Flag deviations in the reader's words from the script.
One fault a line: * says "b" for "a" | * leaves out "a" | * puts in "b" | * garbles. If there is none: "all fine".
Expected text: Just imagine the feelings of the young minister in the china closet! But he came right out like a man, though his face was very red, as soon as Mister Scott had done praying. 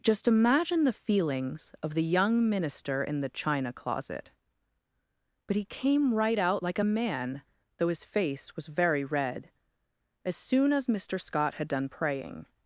all fine